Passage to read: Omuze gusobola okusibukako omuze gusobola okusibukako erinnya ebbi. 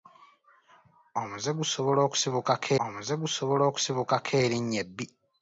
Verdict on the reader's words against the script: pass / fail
pass